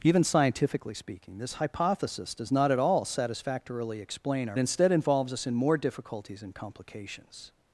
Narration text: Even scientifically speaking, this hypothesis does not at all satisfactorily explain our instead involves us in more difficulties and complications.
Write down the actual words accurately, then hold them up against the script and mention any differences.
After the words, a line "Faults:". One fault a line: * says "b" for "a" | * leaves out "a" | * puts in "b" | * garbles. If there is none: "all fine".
Even scientifically speaking, this hypothesis does not at all satisfactorily explain our instead involves us in more difficulties and complications.
Faults:
all fine